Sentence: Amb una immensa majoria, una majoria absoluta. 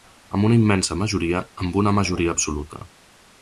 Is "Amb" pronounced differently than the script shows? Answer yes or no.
no